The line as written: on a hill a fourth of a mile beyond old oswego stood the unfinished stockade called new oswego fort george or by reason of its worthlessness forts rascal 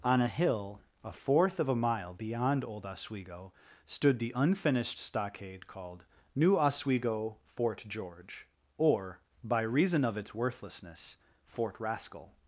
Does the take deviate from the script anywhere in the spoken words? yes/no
yes